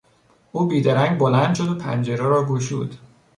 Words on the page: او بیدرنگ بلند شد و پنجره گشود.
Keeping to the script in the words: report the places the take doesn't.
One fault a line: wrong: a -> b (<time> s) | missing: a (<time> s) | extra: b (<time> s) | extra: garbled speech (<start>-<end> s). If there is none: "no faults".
extra: را (2.2 s)